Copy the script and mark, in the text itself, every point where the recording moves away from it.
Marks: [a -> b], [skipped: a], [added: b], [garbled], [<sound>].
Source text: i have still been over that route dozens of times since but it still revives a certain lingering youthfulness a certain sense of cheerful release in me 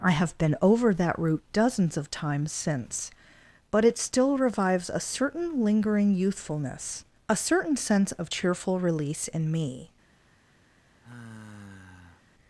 i have [skipped: still] been over that route dozens of times since but it still revives a certain lingering youthfulness a certain sense of cheerful release in me [sigh]